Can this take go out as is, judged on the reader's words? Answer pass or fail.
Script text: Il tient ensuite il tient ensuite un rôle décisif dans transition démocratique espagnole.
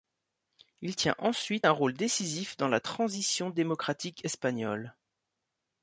fail